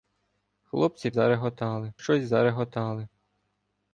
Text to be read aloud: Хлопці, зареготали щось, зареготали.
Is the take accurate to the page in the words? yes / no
yes